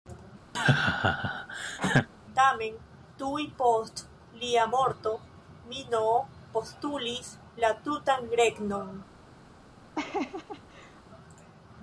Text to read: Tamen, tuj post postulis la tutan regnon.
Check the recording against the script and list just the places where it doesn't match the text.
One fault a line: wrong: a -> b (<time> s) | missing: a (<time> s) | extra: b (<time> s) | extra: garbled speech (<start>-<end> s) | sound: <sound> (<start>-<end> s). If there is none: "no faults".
sound: laugh (0.5-2.1 s)
extra: lia morto Minoo (4.4 s)
sound: laugh (9.9-11.0 s)